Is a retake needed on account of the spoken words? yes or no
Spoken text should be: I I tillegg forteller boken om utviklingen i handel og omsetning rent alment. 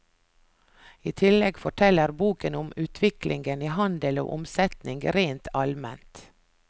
yes